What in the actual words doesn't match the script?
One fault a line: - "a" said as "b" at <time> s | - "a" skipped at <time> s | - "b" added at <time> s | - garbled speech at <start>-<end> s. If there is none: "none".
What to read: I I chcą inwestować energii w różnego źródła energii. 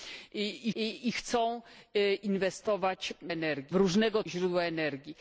none